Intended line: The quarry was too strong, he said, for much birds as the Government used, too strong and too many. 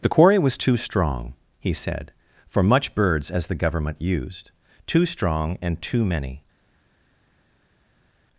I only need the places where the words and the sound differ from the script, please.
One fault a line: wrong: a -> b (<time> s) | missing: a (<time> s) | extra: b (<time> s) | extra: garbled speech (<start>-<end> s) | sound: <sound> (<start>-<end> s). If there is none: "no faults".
no faults